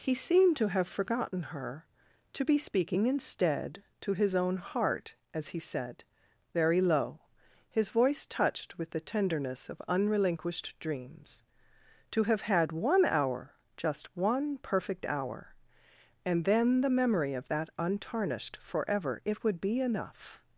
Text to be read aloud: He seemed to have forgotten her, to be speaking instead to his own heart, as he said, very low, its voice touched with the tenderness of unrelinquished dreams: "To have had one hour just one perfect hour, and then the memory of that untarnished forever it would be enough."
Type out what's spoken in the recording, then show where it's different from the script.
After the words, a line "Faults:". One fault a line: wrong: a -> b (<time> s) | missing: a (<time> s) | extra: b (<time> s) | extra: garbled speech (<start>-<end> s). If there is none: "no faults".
He seemed to have forgotten her, to be speaking instead to his own heart, as he said, very low, his voice touched with the tenderness of unrelinquished dreams: "To have had one hour just one perfect hour, and then the memory of that untarnished forever it would be enough."
Faults:
wrong: its -> his (7.7 s)